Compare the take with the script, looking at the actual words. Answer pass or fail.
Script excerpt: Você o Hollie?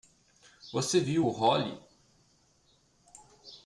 fail